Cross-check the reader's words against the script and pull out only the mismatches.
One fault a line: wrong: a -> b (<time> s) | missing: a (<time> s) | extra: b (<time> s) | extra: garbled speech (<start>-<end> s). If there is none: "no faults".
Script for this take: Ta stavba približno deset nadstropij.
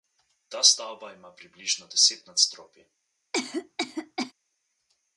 extra: ima (1.1 s)